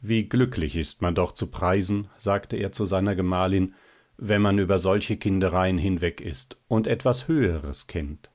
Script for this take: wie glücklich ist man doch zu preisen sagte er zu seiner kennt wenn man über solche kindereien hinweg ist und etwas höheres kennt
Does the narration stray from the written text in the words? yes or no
yes